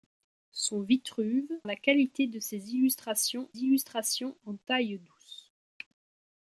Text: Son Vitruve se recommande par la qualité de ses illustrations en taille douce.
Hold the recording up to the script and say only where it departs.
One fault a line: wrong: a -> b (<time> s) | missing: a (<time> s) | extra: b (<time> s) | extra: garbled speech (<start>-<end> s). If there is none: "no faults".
missing: se recommande par (1.4 s)
extra: illustrations (3.6 s)